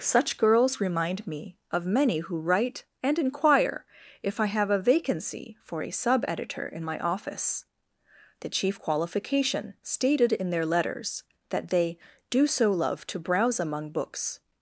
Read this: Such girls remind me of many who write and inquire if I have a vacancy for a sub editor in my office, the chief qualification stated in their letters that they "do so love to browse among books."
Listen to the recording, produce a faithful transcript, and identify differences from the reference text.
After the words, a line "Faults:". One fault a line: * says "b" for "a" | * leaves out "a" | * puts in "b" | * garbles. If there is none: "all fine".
Such girls remind me of many who write and inquire if I have a vacancy for a sub editor in my office, the chief qualification stated in their letters that they "do so love to browse among books."
Faults:
all fine